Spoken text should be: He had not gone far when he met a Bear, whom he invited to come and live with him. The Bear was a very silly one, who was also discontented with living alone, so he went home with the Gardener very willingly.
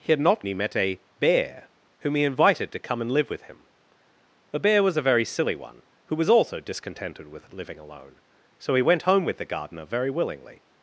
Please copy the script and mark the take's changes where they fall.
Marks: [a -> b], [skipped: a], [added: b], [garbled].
He had not [skipped: gone far when] he met a Bear, whom he invited to come and live with him. The Bear was a very silly one, who was also discontented with living alone, so he went home with the Gardener very willingly.